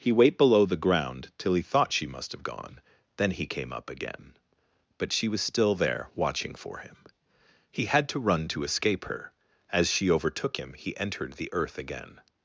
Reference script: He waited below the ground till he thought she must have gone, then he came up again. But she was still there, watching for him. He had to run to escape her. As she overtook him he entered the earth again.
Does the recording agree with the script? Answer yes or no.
no